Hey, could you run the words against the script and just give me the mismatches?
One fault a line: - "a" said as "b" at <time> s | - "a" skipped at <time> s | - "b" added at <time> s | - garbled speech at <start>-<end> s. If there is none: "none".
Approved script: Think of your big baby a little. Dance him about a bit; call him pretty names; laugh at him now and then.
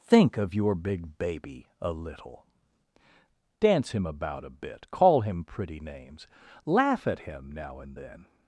none